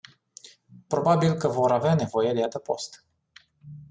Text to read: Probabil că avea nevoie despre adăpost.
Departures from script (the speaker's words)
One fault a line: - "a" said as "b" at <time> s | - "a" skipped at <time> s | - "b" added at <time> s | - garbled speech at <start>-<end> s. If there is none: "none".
- "vor" added at 1.5 s
- "despre" said as "de" at 2.3 s